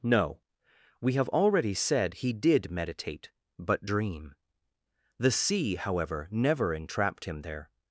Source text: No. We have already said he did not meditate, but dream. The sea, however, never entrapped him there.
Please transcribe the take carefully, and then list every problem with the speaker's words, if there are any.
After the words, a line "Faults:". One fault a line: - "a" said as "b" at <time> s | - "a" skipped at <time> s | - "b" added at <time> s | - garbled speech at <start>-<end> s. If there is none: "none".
No. We have already said he did meditate, but dream. The sea, however, never entrapped him there.
Faults:
- "not" skipped at 2.7 s